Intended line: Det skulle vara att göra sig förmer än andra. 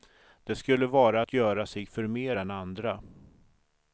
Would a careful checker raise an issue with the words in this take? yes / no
no